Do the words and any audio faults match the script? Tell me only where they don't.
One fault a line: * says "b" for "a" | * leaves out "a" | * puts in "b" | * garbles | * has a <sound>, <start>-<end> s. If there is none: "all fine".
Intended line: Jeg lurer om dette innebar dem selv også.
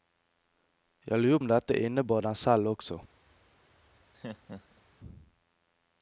* has a laugh, 4.1-4.8 s